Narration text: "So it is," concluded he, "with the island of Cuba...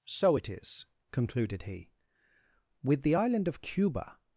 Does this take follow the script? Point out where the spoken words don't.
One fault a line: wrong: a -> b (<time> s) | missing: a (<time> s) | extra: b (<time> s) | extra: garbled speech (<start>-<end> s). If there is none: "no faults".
no faults